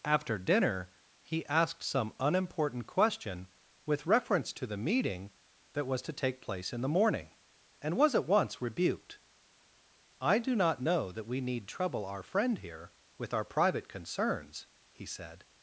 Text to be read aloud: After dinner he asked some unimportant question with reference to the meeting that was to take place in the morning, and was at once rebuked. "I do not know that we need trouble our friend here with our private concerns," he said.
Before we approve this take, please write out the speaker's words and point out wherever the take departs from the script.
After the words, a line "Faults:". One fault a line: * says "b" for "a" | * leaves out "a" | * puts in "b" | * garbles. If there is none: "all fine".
After dinner he asked some unimportant question with reference to the meeting that was to take place in the morning, and was at once rebuked. "I do not know that we need trouble our friend here with our private concerns," he said.
Faults:
all fine